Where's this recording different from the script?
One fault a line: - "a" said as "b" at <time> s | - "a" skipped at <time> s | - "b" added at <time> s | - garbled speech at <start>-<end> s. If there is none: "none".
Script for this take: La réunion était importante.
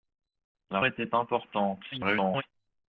- "réunion" skipped at 0.8 s
- garbled speech at 1.9-2.4 s